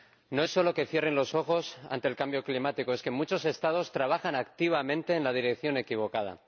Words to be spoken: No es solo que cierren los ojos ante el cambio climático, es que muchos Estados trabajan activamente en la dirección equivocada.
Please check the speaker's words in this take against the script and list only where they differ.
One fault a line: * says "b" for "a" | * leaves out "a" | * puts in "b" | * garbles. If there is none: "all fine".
all fine